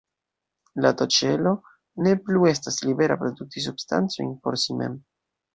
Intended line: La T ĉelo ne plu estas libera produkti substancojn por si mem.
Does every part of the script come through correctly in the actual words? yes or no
yes